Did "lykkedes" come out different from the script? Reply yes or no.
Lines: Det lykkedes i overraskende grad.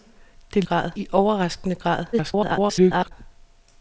yes